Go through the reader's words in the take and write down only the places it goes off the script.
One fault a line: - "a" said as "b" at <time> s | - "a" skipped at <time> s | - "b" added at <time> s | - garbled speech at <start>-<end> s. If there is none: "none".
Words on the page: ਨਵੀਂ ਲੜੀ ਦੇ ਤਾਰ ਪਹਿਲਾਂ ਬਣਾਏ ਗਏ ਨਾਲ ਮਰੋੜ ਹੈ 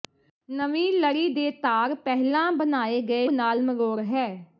none